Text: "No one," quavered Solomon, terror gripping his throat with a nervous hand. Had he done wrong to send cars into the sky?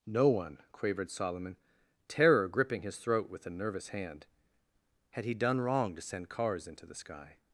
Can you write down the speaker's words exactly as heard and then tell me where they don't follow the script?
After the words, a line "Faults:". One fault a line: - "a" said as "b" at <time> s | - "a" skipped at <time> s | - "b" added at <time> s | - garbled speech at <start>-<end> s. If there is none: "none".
"No one," quavered Solomon, terror gripping his throat with a nervous hand. Had he done wrong to send cars into the sky?
Faults:
none